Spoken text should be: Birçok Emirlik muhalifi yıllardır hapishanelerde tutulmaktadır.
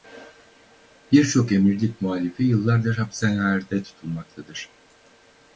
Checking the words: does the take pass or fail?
pass